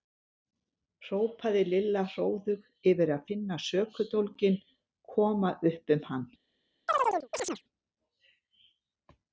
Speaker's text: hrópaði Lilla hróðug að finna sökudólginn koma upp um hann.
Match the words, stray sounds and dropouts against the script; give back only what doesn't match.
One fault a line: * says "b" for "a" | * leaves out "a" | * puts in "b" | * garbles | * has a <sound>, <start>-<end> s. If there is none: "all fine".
* puts in "yfir"
* has a chirp, 6.9-7.6 s